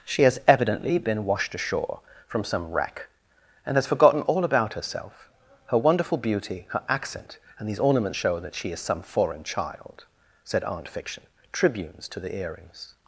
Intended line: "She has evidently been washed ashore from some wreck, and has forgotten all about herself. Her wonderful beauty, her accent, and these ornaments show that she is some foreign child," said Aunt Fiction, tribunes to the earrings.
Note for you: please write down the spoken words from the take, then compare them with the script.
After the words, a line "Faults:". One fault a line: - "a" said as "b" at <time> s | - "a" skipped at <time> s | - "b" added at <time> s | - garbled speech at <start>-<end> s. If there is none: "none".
"She has evidently been washed ashore from some wreck, and has forgotten all about herself. Her wonderful beauty, her accent, and these ornaments show that she is some foreign child," said Aunt Fiction, tribunes to the earrings.
Faults:
none